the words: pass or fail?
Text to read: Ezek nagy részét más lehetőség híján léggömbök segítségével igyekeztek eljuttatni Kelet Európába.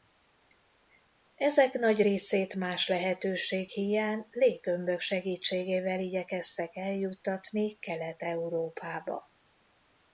pass